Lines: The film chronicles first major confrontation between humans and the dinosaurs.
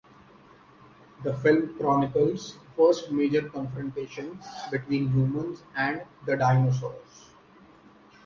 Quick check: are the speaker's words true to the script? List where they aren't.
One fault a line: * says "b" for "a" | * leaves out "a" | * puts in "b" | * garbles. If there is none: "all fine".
all fine